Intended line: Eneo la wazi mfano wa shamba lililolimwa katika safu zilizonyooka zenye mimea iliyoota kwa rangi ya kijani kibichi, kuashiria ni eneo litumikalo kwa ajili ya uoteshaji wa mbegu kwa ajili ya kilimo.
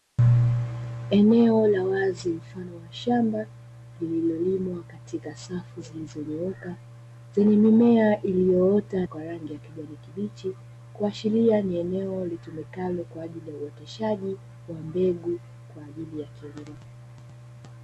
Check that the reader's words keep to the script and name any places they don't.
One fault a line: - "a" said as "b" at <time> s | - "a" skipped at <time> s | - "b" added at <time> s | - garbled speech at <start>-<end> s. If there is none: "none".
none